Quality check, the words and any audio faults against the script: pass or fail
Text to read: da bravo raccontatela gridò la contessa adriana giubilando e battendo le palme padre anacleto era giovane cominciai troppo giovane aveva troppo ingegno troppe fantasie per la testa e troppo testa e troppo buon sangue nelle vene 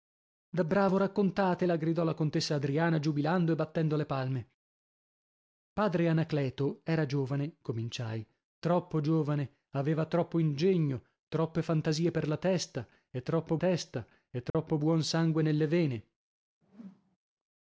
fail